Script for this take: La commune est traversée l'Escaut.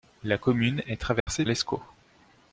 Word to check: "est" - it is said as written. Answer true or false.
true